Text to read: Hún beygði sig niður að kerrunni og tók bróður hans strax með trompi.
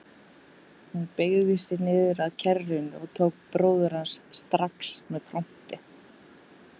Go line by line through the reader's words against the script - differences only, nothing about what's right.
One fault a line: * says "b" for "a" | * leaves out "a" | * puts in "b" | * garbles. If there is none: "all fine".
all fine